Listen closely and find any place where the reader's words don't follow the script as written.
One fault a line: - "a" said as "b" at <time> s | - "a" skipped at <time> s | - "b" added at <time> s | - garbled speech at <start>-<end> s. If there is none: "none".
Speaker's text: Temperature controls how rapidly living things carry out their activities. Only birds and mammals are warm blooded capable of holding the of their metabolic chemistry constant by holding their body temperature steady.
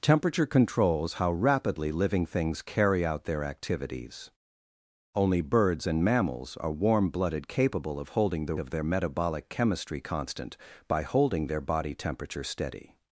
none